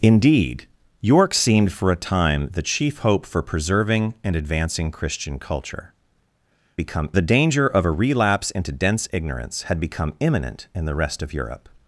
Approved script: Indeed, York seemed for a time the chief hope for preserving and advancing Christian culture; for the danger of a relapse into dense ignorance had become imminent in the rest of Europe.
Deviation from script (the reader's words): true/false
true